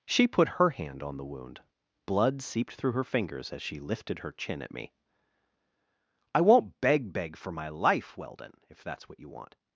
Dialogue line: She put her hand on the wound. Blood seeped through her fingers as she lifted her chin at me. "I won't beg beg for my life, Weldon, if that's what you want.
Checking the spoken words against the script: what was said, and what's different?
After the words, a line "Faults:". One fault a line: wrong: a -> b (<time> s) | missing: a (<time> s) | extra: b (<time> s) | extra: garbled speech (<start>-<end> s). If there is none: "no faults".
She put her hand on the wound. Blood seeped through her fingers as she lifted her chin at me. "I won't beg beg for my life, Weldon, if that's what you want.
Faults:
no faults